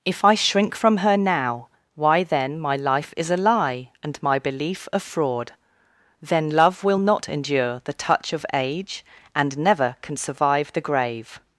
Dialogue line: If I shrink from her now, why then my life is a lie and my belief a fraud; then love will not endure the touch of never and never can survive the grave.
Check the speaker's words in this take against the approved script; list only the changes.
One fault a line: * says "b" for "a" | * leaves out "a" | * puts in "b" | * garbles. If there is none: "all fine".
* says "age" for "never"